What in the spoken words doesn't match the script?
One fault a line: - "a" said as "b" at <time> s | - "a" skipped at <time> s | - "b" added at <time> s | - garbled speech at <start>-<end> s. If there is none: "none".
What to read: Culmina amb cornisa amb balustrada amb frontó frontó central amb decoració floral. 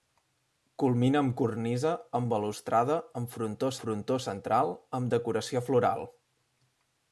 none